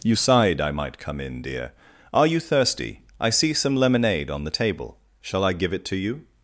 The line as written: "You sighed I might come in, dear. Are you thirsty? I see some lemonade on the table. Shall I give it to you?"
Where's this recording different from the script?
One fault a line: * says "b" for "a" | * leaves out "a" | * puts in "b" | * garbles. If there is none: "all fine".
all fine